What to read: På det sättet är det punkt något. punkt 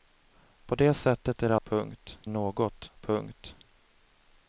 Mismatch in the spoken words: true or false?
false